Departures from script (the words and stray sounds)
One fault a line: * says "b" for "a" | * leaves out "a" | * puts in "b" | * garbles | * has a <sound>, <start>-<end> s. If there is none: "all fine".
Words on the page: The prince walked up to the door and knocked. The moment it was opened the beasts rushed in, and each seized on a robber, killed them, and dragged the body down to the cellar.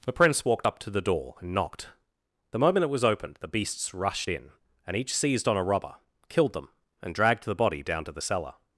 all fine